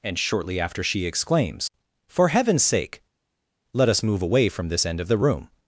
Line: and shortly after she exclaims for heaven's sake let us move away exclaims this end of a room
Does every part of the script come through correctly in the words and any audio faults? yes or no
no